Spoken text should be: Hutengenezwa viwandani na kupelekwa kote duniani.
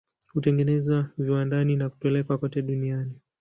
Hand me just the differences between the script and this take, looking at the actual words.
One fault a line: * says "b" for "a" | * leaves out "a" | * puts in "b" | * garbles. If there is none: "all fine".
all fine